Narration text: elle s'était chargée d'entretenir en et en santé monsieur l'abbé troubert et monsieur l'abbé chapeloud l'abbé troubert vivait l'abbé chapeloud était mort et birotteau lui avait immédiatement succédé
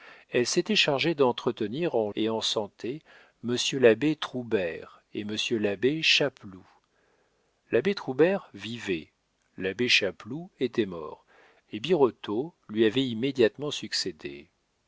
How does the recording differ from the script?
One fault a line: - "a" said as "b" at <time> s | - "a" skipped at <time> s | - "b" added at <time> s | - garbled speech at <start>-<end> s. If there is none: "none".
none